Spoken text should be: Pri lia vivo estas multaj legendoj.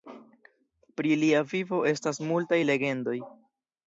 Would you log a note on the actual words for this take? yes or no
no